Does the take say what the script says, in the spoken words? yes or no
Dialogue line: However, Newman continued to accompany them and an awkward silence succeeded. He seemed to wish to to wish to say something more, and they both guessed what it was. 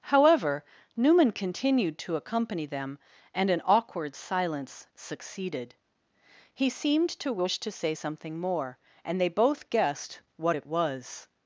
no